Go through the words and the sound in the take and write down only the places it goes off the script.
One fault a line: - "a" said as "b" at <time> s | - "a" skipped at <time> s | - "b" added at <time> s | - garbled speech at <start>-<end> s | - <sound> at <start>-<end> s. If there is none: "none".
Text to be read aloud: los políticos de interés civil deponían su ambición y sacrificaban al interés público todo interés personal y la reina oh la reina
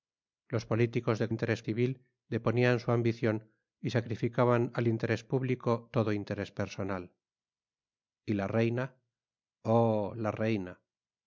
none